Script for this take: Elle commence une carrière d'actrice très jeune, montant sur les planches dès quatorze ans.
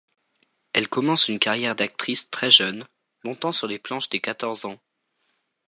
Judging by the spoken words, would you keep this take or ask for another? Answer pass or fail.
pass